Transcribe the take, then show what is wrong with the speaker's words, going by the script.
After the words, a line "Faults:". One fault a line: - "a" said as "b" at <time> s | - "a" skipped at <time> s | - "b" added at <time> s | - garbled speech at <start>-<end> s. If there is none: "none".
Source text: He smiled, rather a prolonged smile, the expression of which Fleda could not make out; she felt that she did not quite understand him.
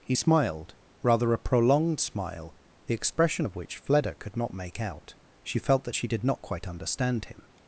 He smiled, rather a prolonged smile, the expression of which Fleda could not make out; she felt that she did not quite understand him.
Faults:
none